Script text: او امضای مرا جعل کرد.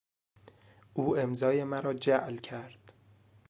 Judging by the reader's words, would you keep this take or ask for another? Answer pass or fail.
pass